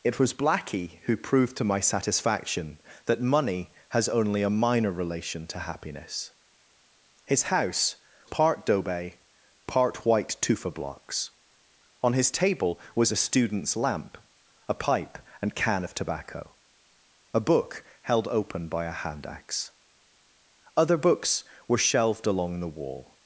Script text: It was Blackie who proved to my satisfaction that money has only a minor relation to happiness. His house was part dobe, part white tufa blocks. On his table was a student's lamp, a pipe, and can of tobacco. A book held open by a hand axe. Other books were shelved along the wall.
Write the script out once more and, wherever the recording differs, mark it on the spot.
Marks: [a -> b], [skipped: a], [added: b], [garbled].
It was Blackie who proved to my satisfaction that money has only a minor relation to happiness. His house [skipped: was] part dobe, part white tufa blocks. On his table was a student's lamp, a pipe, and can of tobacco. A book held open by a hand axe. Other books were shelved along the wall.